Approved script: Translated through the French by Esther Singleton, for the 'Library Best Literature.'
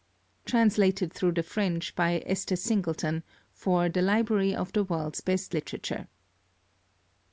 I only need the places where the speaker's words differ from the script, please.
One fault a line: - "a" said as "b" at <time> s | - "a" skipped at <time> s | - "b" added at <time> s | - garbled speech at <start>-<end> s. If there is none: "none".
- "of the World's" added at 4.6 s